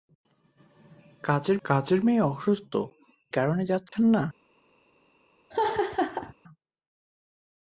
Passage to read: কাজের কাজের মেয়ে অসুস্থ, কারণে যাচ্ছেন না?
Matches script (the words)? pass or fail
pass